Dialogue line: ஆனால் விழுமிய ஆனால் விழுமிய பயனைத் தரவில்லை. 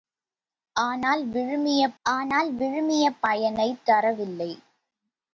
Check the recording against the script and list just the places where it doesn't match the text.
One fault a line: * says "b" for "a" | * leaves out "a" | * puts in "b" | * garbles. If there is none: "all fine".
all fine